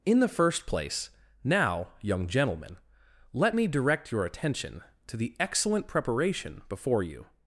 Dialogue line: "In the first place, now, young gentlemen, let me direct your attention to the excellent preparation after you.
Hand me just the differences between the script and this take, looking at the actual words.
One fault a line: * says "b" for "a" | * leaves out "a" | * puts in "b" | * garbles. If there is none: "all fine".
* says "before" for "after"